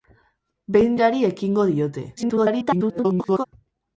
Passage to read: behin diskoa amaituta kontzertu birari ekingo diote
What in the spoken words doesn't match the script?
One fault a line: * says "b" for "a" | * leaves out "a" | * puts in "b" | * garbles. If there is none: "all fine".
* leaves out "diskoa amaituta kontzertu"
* garbles